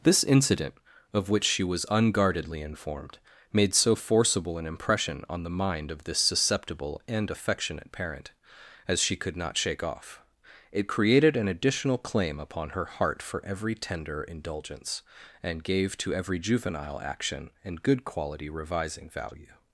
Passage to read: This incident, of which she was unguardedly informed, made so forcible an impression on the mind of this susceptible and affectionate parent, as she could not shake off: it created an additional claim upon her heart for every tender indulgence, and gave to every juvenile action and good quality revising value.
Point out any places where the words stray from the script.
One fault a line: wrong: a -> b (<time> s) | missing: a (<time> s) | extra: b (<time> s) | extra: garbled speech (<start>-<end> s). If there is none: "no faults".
no faults